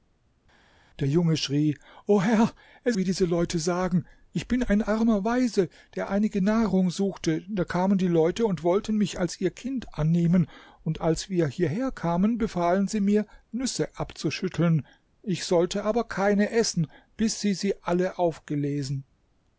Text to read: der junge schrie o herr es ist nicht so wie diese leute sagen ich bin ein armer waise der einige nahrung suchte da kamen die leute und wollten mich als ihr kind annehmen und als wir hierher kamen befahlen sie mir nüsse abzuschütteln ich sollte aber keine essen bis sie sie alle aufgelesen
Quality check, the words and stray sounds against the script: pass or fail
fail